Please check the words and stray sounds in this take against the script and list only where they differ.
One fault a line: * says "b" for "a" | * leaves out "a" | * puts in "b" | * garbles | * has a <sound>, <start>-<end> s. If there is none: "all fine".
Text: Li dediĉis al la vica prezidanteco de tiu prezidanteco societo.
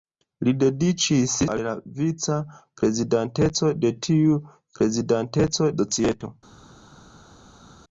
all fine